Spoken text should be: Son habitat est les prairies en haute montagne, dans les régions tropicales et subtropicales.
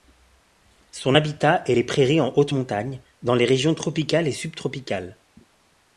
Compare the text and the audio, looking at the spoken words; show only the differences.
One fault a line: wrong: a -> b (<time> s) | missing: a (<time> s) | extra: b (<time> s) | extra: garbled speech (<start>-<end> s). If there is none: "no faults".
no faults